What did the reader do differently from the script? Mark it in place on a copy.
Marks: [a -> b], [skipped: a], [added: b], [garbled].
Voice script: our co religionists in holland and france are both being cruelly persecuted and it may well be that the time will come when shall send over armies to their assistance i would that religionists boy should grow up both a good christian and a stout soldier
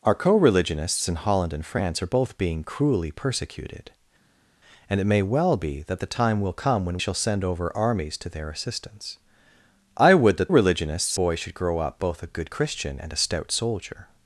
our co religionists in holland and france are both being cruelly persecuted and it may well be that the time will come when shall send over armies to their assistance i would that religionists boy should grow up both a good christian and a stout soldier